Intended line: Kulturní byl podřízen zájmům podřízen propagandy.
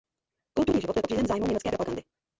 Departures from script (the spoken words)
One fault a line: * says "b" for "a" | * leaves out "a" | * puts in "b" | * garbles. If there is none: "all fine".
* puts in "život"
* says "německé" for "podřízen"